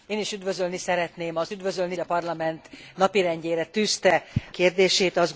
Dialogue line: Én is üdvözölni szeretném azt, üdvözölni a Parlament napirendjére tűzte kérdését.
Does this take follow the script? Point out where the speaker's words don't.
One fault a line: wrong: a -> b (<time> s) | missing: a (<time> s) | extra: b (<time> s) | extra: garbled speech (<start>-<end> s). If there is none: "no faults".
no faults